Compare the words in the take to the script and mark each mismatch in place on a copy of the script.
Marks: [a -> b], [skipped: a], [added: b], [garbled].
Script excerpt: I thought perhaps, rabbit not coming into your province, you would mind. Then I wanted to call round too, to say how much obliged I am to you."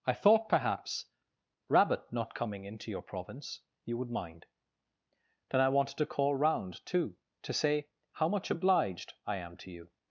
I thought perhaps, rabbit not coming into your province, you would mind. Then I wanted to call round too, to say how much obliged I am to you."